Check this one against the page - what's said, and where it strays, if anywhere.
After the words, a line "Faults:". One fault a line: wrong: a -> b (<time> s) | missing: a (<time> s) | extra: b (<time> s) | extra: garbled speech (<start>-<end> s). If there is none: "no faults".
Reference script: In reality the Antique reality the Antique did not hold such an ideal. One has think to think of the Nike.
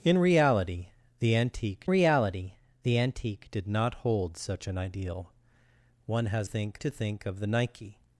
In reality the Antique reality the Antique did not hold such an ideal. One has think to think of the Nike.
Faults:
no faults